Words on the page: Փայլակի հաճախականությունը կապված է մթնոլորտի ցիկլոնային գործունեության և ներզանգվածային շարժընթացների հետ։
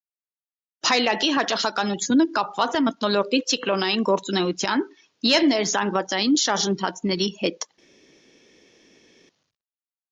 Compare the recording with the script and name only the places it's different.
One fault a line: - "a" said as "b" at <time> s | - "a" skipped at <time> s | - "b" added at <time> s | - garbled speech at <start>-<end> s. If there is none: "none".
none